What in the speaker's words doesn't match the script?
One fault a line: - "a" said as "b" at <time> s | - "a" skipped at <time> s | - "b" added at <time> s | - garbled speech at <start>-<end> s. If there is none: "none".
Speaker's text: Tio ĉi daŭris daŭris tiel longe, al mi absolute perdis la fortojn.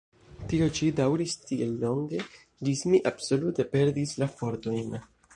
- "daŭris" skipped at 1.3 s
- "al" said as "ĝis" at 2.7 s